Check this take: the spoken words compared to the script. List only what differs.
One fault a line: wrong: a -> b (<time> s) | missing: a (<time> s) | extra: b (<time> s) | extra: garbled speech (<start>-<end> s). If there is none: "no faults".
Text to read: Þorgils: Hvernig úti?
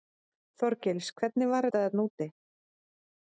extra: var þetta þarna (1.5 s)